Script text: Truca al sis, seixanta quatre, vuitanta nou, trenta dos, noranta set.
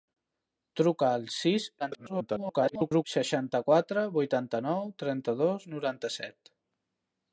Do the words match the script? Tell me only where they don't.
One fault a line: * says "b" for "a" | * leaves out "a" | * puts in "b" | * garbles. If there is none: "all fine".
* garbles